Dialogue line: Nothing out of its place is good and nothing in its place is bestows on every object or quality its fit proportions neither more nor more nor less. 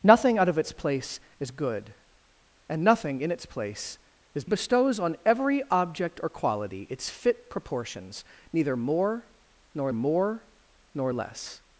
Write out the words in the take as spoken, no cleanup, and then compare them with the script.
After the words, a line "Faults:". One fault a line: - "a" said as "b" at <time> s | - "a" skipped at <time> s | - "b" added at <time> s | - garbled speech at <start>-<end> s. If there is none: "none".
Nothing out of its place is good and nothing in its place is bestows on every object or quality its fit proportions neither more nor more nor less.
Faults:
none